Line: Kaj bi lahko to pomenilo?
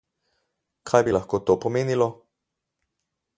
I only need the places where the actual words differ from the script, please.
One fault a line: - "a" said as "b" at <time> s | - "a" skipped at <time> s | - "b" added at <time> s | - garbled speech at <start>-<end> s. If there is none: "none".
none